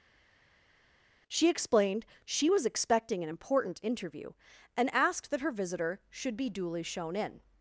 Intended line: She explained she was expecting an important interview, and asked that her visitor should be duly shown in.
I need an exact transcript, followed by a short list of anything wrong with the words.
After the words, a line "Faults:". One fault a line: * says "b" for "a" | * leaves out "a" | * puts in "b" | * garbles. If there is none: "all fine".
She explained she was expecting an important interview, and asked that her visitor should be duly shown in.
Faults:
all fine